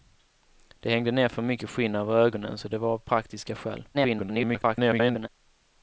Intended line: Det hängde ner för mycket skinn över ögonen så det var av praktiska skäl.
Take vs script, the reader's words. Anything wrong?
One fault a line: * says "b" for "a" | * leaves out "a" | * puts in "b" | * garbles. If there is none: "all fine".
* garbles